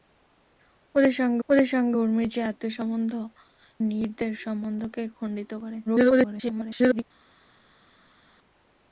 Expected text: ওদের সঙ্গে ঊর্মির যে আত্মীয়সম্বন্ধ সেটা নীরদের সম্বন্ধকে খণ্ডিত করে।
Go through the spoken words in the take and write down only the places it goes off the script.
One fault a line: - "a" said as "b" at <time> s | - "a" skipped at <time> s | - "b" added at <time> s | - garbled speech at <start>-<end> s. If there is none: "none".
- "ওদের সঙ্গে" added at 1.5 s
- "সেটা" skipped at 3.1 s
- garbled speech at 5.9-7.0 s